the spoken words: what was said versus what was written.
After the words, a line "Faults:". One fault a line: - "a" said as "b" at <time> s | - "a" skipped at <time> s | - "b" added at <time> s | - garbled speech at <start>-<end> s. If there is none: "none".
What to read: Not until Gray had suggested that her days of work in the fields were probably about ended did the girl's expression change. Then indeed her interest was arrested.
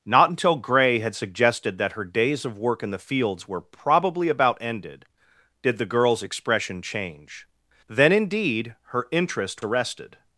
Not until Gray had suggested that her days of work in the fields were probably about ended did the girl's expression change. Then indeed her interest arrested.
Faults:
- "was" skipped at 9.6 s